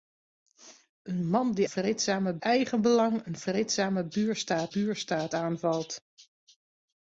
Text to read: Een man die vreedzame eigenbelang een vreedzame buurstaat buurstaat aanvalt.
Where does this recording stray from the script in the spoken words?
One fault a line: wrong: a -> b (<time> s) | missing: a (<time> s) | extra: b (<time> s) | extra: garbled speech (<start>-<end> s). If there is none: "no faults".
no faults